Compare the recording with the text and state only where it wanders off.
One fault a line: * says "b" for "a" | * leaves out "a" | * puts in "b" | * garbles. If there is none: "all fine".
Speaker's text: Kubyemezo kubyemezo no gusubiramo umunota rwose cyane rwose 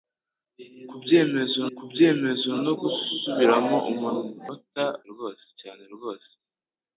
all fine